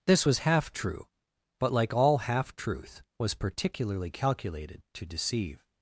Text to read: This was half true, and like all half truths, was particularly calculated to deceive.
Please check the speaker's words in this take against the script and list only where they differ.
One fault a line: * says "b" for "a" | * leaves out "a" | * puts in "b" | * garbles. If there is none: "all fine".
* says "but" for "and"
* says "truth" for "truths"